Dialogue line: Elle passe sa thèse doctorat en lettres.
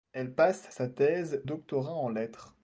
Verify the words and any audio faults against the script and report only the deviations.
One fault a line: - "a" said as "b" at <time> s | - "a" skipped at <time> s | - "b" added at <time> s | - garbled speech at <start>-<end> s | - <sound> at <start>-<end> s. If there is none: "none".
none